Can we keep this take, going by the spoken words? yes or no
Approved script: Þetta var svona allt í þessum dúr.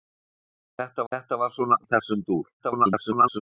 no